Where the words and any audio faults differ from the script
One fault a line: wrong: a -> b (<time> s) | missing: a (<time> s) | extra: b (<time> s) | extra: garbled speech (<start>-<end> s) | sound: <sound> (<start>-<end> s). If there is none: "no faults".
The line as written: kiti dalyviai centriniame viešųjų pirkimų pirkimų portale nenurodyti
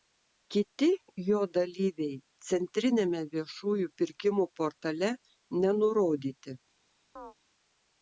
extra: jo (1.3 s)
missing: pirkimų (4.5 s)
sound: chirp (7.2-7.3 s)